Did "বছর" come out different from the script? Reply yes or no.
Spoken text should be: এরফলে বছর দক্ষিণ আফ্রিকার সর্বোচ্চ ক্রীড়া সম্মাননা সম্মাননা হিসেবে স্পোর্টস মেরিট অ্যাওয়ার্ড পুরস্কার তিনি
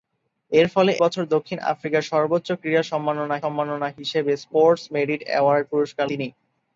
no